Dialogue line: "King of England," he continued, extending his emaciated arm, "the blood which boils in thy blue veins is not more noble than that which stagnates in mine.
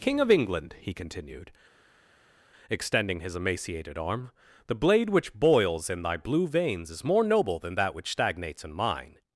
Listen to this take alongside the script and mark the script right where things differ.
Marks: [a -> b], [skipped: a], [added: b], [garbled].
"King of England," he continued, extending his emaciated arm, "the [blood -> blade] which boils in thy blue veins is [skipped: not] more noble than that which stagnates in mine.